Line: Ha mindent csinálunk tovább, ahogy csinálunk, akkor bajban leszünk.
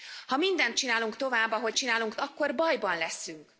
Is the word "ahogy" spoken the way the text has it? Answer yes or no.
yes